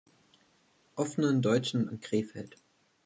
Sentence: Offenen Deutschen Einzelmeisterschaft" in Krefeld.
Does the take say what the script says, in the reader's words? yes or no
no